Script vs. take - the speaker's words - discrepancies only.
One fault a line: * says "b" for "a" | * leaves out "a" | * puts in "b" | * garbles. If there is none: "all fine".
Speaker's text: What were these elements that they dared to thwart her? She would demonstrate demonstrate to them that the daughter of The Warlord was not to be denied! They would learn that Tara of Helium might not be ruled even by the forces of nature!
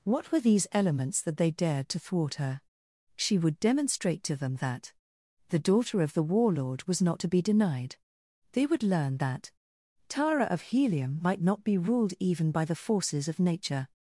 * leaves out "demonstrate"